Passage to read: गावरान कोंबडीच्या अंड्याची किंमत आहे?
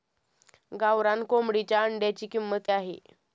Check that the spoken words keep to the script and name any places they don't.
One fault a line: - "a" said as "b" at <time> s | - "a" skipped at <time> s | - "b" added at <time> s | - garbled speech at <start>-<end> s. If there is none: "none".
none